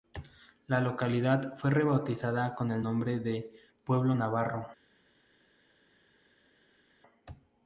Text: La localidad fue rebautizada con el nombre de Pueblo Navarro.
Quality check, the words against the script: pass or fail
pass